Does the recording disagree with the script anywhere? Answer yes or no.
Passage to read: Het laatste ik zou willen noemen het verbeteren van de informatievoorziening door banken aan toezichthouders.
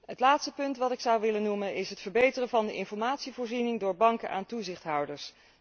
yes